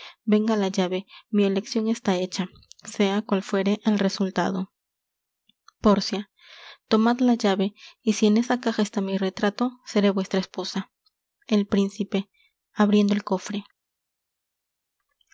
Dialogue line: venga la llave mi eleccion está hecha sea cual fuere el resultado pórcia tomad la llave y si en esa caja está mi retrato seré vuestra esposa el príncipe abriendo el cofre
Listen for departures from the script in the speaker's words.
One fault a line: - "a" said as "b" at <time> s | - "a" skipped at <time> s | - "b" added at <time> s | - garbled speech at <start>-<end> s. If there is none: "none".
none